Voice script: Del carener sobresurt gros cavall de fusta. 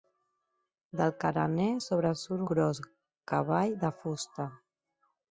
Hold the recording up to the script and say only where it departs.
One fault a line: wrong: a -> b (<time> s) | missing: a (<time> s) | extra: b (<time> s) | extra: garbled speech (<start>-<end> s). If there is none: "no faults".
no faults